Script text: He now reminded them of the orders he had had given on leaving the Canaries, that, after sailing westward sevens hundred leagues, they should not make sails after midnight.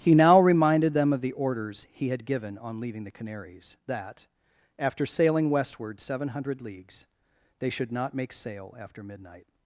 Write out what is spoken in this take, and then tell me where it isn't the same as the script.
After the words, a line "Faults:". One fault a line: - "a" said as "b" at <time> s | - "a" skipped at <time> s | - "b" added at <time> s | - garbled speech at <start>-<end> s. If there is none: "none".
He now reminded them of the orders he had given on leaving the Canaries, that, after sailing westward seven hundred leagues, they should not make sail after midnight.
Faults:
- "had" skipped at 2.2 s
- "sevens" said as "seven" at 6.0 s
- "sails" said as "sail" at 8.3 s